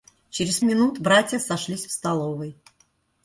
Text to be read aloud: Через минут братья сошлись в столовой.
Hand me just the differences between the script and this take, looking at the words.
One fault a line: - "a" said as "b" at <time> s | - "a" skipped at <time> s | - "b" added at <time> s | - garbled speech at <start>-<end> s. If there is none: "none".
none